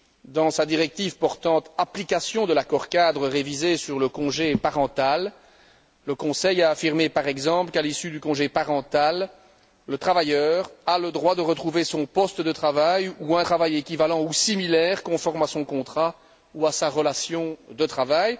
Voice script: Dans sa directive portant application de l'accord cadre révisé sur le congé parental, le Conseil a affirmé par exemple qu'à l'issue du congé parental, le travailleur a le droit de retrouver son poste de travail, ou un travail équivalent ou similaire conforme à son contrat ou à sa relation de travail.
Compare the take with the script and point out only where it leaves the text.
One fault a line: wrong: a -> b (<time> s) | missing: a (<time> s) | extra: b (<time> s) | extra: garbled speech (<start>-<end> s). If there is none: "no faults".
no faults